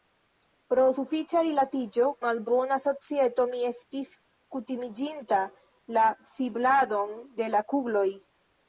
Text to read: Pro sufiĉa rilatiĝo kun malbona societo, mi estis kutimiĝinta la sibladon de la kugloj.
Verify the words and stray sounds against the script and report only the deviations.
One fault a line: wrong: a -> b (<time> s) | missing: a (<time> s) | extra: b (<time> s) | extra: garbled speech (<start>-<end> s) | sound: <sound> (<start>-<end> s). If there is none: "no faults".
missing: kun (2.0 s)